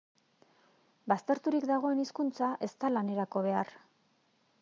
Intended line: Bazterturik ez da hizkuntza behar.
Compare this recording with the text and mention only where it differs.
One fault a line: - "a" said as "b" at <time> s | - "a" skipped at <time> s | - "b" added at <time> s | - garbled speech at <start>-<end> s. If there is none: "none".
- "dagoen hizkuntza" added at 1.7 s
- "hizkuntza" said as "lanerako" at 3.0 s